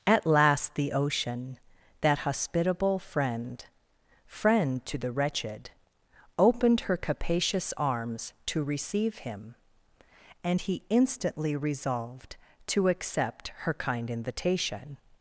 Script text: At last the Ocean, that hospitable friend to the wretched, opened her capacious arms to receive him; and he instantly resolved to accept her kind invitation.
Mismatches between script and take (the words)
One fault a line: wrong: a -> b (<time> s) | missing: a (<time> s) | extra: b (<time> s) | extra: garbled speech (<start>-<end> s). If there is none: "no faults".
extra: friend (4.2 s)